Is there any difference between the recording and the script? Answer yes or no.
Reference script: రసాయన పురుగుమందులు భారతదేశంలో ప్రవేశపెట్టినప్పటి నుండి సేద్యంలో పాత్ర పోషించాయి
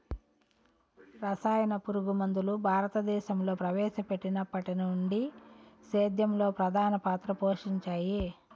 yes